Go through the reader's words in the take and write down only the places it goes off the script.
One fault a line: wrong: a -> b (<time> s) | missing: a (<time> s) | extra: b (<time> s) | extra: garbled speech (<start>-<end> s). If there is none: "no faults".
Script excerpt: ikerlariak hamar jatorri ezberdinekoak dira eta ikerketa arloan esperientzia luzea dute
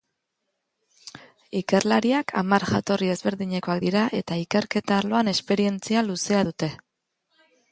no faults